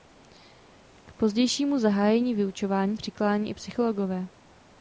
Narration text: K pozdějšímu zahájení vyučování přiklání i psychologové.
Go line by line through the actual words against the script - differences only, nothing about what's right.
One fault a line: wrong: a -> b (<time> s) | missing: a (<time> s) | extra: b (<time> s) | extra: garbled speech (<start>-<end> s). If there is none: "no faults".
no faults